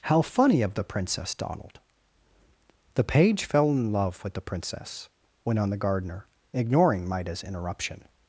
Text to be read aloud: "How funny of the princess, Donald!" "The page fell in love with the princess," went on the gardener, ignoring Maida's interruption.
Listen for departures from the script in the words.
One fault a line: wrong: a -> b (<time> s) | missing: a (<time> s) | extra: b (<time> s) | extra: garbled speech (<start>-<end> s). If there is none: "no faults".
no faults